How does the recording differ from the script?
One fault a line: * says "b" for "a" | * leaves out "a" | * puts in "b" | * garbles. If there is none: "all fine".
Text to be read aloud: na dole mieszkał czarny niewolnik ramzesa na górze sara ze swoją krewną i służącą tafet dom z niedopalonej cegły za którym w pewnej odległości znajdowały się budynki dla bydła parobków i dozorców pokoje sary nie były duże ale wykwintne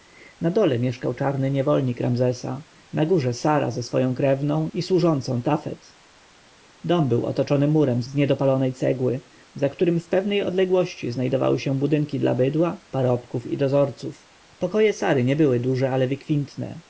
* puts in "był otoczony murem"